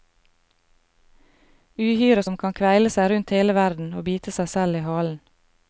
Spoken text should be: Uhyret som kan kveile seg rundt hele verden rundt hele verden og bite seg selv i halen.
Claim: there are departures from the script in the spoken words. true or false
true